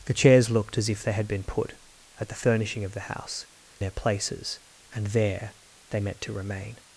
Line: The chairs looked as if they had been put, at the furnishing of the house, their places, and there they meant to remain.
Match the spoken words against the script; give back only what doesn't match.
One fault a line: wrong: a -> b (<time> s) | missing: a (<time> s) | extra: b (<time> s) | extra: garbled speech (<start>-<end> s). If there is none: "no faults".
no faults